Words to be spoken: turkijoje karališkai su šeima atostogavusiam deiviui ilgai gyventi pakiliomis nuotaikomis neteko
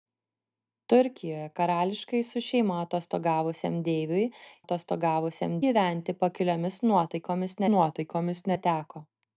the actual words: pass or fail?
fail